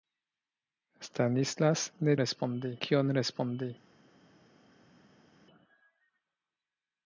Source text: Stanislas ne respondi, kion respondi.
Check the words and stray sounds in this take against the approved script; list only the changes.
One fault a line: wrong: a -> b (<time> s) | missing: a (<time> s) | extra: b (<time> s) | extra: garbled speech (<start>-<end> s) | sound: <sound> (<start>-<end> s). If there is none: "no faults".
no faults